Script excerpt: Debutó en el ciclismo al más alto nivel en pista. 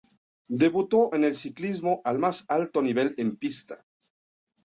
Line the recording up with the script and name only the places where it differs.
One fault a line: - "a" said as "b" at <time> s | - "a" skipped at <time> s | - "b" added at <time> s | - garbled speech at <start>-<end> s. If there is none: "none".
none